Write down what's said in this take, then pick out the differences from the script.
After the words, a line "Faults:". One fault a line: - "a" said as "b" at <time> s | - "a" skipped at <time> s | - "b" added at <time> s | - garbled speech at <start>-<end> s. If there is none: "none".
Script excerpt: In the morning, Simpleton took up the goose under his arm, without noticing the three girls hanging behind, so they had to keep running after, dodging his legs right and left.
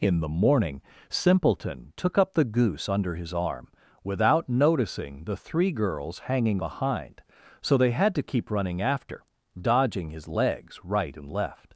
In the morning, Simpleton took up the goose under his arm, without noticing the three girls hanging behind, so they had to keep running after, dodging his legs right and left.
Faults:
none